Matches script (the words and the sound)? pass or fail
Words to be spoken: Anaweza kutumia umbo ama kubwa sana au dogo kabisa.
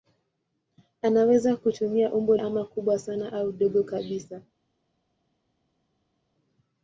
pass